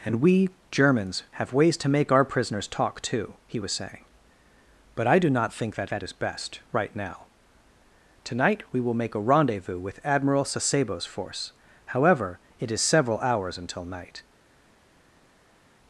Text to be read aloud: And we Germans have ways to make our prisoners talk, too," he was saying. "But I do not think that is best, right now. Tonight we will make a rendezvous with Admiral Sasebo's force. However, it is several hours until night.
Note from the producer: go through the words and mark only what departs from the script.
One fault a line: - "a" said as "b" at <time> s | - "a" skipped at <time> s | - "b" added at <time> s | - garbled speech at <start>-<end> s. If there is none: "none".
- "that" added at 5.9 s